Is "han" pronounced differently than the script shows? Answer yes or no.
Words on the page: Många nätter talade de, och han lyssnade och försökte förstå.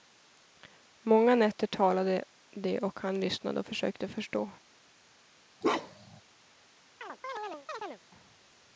no